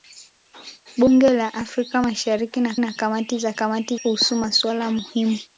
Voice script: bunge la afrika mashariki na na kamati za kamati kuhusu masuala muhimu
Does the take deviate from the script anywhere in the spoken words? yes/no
no